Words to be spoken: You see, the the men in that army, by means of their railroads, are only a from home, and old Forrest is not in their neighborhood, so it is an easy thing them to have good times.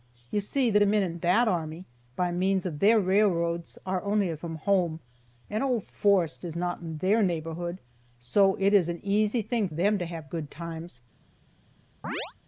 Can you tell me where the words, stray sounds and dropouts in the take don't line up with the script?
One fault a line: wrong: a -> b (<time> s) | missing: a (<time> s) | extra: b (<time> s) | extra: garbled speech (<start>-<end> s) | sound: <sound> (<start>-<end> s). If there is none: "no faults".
sound: chirp (12.0-12.3 s)